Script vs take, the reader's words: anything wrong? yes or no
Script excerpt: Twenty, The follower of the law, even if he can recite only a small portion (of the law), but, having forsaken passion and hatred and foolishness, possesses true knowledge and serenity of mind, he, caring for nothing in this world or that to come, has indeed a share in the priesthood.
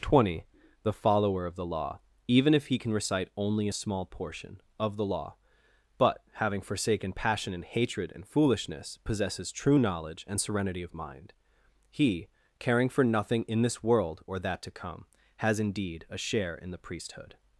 no